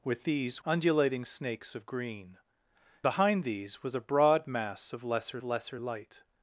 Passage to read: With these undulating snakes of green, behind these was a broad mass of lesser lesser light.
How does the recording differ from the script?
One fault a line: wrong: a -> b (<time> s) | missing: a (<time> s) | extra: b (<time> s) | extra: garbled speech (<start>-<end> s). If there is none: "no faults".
no faults